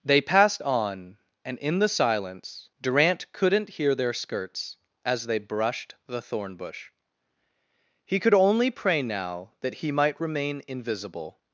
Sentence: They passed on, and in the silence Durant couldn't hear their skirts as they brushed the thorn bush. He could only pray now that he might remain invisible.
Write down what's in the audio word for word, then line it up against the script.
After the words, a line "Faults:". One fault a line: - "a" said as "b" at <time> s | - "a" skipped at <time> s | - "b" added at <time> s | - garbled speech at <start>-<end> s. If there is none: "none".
They passed on, and in the silence Durant couldn't hear their skirts as they brushed the thorn bush. He could only pray now that he might remain invisible.
Faults:
none